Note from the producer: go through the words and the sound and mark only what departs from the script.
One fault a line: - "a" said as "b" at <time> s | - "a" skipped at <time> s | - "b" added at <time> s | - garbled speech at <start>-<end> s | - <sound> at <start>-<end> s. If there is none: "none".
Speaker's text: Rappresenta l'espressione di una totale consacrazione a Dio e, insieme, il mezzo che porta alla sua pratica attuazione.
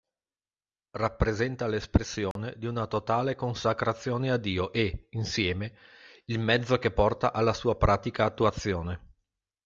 - dropout at 2.3-2.4 s